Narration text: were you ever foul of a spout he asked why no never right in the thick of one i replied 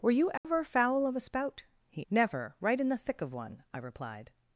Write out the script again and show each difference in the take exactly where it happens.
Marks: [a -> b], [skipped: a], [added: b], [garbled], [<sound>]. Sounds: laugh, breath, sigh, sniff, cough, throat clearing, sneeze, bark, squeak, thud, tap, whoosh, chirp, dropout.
were you ever [dropout] foul of a spout he [skipped: asked why no] never right in the thick of one i replied